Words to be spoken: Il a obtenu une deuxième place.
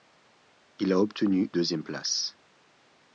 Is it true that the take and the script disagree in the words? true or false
true